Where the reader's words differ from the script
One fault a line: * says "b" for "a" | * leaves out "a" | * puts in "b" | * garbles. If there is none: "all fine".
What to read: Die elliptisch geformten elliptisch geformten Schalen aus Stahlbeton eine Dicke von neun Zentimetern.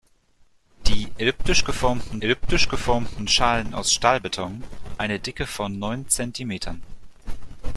all fine